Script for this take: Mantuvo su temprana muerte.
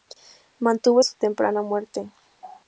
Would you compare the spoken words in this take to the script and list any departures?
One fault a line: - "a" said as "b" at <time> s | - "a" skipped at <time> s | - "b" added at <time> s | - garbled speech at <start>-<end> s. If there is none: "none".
none